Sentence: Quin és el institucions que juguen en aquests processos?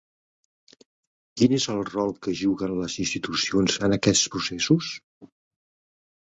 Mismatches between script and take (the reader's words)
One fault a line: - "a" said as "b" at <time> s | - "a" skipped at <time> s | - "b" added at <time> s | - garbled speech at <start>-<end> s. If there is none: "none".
- "institucions" said as "rol" at 1.9 s
- "les institucions" added at 2.8 s